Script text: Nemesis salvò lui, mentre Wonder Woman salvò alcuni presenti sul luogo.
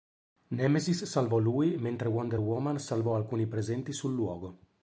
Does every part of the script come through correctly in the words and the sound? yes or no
yes